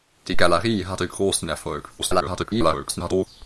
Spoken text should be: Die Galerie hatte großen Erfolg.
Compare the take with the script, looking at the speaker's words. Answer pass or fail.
fail